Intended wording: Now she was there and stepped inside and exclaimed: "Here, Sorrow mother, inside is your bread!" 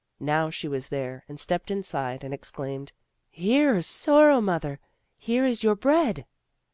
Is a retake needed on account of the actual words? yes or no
yes